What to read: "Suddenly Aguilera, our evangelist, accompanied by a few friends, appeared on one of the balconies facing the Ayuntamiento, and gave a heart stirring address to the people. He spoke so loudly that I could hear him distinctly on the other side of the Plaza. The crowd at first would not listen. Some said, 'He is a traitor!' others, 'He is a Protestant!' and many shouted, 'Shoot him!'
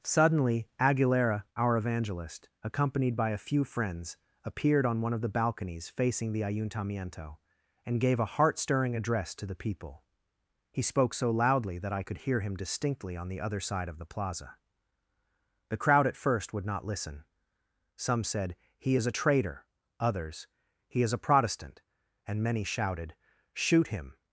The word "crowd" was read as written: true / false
true